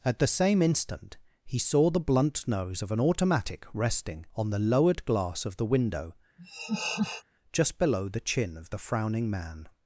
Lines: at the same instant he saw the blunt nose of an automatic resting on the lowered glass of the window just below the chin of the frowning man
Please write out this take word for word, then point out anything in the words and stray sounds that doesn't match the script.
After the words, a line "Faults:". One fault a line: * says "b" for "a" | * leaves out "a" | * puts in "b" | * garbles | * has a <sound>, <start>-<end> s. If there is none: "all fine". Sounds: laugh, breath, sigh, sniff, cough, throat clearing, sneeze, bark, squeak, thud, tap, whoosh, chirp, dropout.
at the same instant he saw the blunt nose of an automatic resting on the lowered glass of the window just below the chin of the frowning man
Faults:
* has a laugh, 6.4-7.2 s